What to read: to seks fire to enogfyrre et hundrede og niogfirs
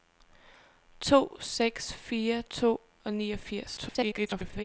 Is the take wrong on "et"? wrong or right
wrong